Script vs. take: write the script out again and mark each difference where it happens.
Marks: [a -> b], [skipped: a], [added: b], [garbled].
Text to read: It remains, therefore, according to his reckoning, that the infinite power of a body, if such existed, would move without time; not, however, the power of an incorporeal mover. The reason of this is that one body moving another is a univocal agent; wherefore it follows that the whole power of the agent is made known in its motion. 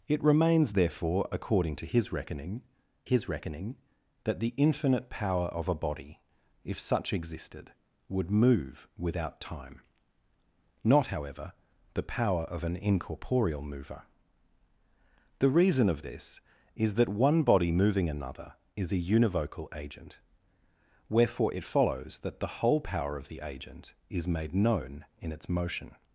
It remains, therefore, according to his reckoning, [added: his reckoning] that the infinite power of a body, if such existed, would move without time; not, however, the power of an incorporeal mover. The reason of this is that one body moving another is a univocal agent; wherefore it follows that the whole power of the agent is made known in its motion.